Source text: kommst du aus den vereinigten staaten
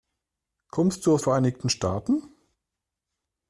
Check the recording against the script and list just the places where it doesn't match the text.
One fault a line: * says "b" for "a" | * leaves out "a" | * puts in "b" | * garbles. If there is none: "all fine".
* leaves out "den"